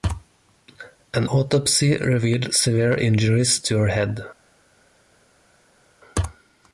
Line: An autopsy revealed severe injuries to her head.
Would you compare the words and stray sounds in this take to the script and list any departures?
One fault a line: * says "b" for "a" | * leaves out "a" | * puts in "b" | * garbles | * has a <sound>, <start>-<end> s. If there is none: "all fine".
all fine